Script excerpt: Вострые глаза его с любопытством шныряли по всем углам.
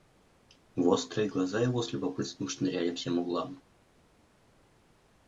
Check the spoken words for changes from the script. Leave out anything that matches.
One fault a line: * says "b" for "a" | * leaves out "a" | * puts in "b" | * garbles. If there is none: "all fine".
* leaves out "по"